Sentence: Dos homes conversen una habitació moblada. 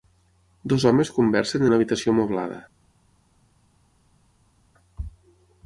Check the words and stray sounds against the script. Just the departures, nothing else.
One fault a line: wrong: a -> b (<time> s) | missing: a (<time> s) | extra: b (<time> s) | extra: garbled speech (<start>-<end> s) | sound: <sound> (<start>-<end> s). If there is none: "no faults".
no faults